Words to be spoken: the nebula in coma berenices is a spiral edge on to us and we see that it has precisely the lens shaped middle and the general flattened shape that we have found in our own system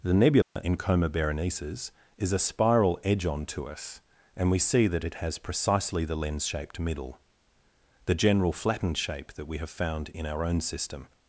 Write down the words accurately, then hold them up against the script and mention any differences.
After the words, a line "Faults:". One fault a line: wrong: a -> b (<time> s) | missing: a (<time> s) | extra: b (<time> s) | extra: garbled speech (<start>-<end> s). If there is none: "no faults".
the nebula in coma berenices is a spiral edge on to us and we see that it has precisely the lens shaped middle the general flattened shape that we have found in our own system
Faults:
missing: and (7.2 s)